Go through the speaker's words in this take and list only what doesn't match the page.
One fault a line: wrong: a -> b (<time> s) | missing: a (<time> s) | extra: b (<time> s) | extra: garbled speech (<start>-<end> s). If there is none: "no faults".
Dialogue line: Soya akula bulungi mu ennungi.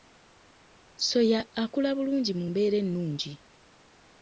extra: mbeera (2.5 s)